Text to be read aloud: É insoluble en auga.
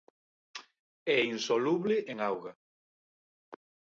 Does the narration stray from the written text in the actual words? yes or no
no